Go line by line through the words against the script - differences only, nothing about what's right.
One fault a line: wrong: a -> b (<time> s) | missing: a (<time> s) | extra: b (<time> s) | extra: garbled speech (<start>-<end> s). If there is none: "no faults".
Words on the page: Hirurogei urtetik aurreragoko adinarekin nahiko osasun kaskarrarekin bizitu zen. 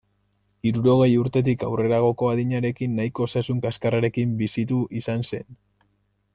extra: izan (5.0 s)